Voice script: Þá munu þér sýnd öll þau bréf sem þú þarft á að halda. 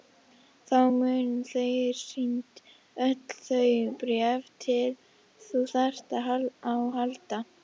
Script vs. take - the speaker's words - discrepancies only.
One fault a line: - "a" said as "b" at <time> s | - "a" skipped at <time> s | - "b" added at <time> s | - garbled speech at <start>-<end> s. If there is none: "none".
none